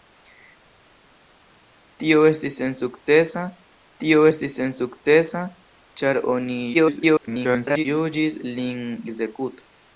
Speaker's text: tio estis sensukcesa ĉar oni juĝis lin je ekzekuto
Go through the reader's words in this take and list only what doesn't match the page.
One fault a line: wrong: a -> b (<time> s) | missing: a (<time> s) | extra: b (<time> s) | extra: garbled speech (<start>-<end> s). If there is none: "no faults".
extra: tio estis sensukcesa (4.0 s)
extra: garbled speech (6.7-7.9 s)
missing: je (8.8 s)